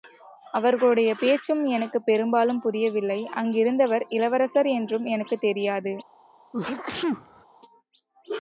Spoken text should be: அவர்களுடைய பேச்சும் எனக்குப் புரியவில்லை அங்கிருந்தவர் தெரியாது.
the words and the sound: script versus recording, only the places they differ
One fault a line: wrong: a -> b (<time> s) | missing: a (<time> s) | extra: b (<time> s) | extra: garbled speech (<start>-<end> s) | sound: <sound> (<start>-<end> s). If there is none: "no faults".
extra: பெரும்பாலும் (2.0 s)
extra: இளவரசர் என்றும் எனக்குத் (4.1 s)
sound: sneeze (6.5-7.5 s)